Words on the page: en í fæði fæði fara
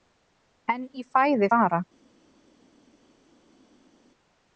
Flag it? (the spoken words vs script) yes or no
yes